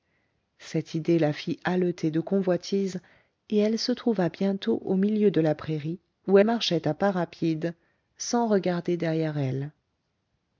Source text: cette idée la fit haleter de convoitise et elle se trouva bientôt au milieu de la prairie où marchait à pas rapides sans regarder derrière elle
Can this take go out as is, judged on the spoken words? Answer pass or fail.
pass